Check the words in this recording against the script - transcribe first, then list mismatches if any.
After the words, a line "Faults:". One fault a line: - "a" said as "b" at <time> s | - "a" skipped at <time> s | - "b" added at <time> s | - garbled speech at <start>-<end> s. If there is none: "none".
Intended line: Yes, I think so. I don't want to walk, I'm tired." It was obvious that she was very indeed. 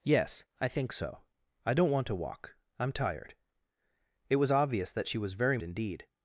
Yes, I think so. I don't want to walk, I'm tired." It was obvious that she was very indeed.
Faults:
none